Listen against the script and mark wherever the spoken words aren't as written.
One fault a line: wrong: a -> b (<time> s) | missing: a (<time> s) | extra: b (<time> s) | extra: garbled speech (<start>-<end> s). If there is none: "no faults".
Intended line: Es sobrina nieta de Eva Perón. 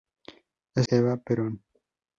missing: sobrina nieta de (0.9 s)